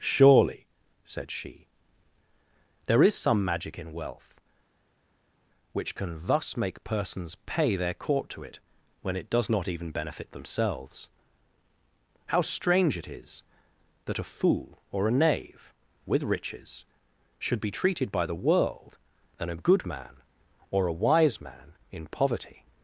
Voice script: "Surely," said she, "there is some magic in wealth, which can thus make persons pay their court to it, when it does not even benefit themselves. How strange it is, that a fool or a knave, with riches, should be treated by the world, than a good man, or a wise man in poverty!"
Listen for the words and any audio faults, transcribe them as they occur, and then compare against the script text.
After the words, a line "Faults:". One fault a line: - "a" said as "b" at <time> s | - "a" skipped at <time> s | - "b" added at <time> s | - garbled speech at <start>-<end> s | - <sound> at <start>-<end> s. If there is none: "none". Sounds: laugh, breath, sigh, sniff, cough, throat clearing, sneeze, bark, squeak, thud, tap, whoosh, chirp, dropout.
"Surely," said she, "there is some magic in wealth, which can thus make persons pay their court to it, when it does not even benefit themselves. How strange it is, that a fool or a knave, with riches, should be treated by the world, than a good man, or a wise man in poverty!"
Faults:
none